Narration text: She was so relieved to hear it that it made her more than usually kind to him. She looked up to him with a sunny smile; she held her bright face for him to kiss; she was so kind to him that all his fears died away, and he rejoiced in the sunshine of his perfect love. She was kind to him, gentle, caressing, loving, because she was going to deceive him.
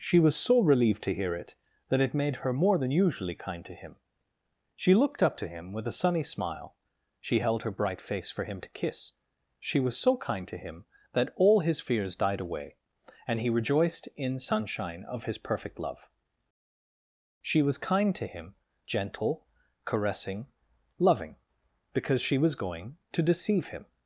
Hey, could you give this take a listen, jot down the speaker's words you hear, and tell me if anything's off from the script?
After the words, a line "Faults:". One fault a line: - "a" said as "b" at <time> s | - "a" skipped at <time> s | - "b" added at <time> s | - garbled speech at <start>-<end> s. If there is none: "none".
She was so relieved to hear it that it made her more than usually kind to him. She looked up to him with a sunny smile; she held her bright face for him to kiss; she was so kind to him that all his fears died away, and he rejoiced in sunshine of his perfect love. She was kind to him, gentle, caressing, loving, because she was going to deceive him.
Faults:
- "the" skipped at 14.4 s